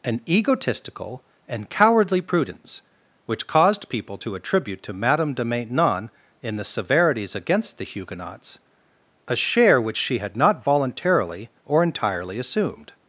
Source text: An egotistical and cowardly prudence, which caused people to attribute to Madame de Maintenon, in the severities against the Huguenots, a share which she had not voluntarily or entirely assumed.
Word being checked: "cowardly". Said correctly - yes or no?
yes